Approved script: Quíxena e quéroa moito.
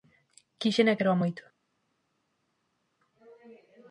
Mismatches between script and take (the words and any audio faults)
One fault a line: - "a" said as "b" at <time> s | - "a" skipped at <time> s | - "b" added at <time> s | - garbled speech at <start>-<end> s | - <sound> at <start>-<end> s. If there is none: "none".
none